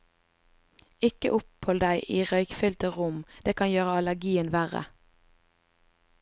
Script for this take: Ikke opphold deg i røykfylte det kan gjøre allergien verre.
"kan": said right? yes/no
yes